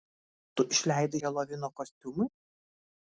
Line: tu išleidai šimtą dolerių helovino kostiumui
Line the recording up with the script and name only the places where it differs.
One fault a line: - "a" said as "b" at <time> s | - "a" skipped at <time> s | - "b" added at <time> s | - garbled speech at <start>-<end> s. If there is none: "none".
- "šimtą dolerių" skipped at 1.2 s